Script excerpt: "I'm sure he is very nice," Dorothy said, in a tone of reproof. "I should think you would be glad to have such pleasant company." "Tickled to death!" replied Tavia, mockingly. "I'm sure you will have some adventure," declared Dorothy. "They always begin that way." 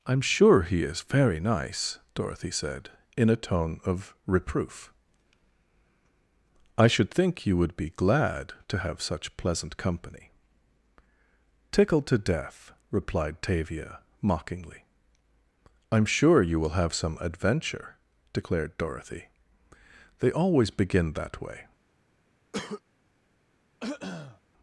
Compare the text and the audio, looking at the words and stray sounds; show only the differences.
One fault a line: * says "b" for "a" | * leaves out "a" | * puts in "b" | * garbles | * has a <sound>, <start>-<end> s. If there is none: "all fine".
* has a cough, 22.5-22.8 s
* has a throat clearing, 23.8-24.4 s